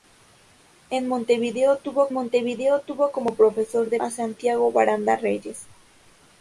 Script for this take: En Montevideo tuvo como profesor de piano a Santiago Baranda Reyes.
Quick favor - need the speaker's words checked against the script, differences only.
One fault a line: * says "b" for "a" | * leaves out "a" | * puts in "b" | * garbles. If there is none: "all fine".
* puts in "Montevideo tuvo"
* leaves out "piano"